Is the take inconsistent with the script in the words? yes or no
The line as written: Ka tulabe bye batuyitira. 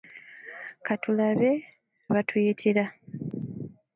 yes